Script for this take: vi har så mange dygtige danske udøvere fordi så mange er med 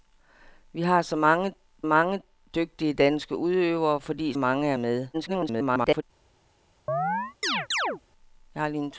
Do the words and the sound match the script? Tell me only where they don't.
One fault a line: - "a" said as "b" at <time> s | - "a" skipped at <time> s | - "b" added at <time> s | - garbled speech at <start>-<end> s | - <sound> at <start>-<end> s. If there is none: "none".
- "mange" added at 1.8 s
- "så" skipped at 4.3 s
- garbled speech at 5.1-6.0 s
- chirp at 6.9-8.0 s